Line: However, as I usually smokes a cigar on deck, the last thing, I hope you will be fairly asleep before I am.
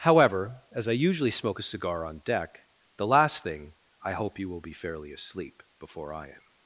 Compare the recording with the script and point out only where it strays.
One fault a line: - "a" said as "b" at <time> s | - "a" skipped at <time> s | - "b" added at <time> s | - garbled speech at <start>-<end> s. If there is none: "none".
- "smokes" said as "smoke" at 1.3 s